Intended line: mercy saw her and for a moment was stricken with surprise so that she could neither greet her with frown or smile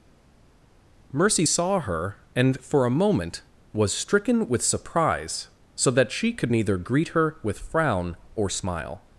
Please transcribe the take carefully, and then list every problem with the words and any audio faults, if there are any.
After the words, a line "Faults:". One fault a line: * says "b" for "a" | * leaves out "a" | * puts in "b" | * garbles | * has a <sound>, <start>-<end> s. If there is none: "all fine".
mercy saw her and for a moment was stricken with surprise so that she could neither greet her with frown or smile
Faults:
all fine